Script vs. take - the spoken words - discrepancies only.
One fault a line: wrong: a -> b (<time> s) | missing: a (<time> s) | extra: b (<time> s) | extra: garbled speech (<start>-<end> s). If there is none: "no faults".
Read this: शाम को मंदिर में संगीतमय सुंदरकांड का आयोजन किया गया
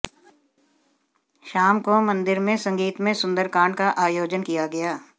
no faults